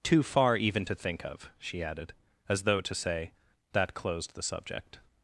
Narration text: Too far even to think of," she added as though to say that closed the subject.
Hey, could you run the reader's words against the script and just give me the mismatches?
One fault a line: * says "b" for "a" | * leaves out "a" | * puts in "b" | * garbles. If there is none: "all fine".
all fine